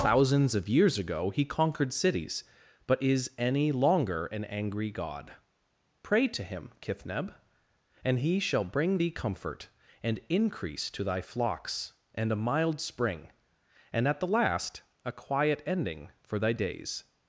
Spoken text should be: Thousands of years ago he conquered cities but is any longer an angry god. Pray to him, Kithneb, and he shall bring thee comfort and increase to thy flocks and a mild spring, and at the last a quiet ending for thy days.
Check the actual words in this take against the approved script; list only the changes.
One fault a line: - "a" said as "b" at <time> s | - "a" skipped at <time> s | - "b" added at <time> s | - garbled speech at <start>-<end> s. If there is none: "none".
none